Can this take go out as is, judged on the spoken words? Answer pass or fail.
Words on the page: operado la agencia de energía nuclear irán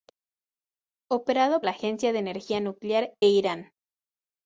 pass